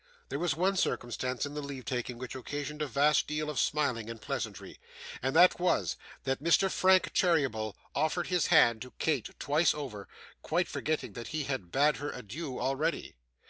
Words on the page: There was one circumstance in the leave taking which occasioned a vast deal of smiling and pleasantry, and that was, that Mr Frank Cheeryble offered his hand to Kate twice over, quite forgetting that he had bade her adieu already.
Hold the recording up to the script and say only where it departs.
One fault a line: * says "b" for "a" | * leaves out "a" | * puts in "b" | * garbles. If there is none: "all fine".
all fine